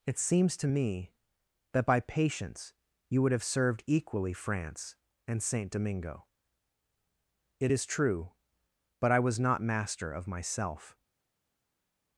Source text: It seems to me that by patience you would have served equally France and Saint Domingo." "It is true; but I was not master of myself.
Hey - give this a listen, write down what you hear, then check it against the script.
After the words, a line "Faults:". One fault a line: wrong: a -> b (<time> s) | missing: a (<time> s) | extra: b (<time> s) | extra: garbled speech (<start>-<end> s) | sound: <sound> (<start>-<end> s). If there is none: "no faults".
It seems to me that by patience you would have served equally France and Saint Domingo." "It is true; but I was not master of myself.
Faults:
no faults